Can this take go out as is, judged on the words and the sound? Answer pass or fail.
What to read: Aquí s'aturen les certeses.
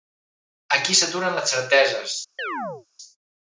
fail